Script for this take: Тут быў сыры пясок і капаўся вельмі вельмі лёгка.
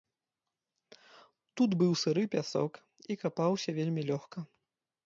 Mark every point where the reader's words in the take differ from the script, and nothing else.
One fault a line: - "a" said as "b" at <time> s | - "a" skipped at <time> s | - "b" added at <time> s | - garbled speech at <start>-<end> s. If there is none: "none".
- "вельмі" skipped at 4.0 s